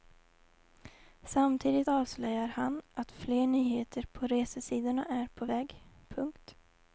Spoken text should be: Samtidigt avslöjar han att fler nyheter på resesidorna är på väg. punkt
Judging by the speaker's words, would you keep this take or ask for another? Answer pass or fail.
pass